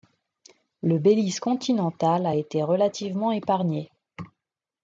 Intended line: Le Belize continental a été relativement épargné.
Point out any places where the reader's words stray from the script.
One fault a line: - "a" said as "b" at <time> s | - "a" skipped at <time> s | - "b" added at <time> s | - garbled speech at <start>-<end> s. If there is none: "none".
none